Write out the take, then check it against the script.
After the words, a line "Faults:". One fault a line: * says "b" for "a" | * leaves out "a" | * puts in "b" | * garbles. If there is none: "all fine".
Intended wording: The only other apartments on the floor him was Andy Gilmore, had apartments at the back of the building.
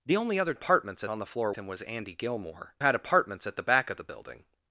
The only other apartments on the floor him was Andy Gilmore, had apartments at the back of the building.
Faults:
all fine